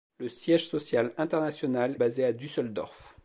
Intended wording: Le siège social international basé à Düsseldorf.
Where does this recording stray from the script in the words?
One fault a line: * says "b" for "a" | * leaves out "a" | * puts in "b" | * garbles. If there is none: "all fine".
all fine